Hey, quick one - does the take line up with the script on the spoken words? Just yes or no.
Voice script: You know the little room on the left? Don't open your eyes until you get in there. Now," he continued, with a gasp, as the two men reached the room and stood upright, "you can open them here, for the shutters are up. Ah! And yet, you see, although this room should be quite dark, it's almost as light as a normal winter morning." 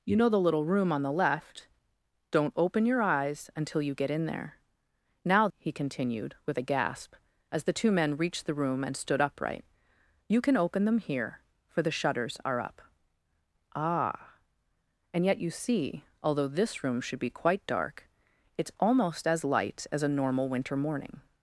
yes